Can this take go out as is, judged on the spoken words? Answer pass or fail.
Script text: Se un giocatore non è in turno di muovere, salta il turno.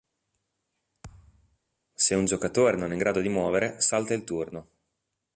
fail